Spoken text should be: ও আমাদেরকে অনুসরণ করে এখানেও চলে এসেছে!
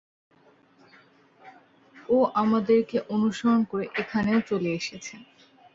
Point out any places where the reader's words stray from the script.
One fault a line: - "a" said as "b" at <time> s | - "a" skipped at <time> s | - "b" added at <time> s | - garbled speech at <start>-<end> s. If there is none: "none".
none